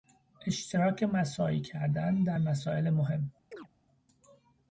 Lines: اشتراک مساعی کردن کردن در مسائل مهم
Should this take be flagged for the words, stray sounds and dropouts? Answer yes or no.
yes